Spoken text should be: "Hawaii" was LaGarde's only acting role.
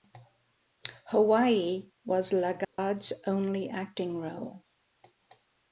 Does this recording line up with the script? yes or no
yes